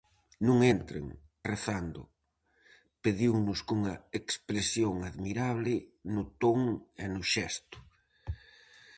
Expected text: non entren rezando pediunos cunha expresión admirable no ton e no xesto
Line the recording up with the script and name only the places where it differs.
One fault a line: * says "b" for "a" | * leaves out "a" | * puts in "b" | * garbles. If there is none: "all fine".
all fine